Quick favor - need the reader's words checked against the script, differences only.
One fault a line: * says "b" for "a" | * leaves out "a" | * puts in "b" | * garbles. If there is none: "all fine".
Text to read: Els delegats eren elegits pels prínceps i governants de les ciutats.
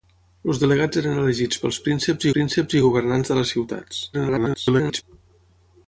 * puts in "prínceps"
* garbles